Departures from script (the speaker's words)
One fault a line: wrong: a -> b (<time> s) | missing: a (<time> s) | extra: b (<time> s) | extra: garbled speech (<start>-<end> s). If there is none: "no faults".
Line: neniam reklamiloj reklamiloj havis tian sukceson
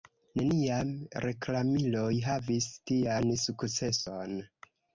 missing: reklamiloj (2.1 s)